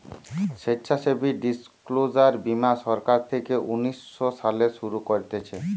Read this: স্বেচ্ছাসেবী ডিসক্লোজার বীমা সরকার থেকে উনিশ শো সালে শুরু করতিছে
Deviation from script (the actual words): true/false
false